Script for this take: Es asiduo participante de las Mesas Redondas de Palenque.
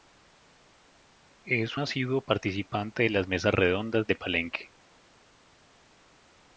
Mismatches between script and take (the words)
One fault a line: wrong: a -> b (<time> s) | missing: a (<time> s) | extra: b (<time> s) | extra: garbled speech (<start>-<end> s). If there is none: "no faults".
no faults